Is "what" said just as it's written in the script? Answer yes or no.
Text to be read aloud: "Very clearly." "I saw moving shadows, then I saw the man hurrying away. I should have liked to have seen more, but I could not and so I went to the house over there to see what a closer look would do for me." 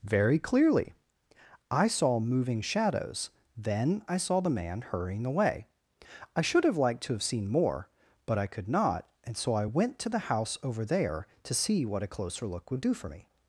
yes